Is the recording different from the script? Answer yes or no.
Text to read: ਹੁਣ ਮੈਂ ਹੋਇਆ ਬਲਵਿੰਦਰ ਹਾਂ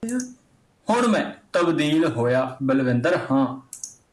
yes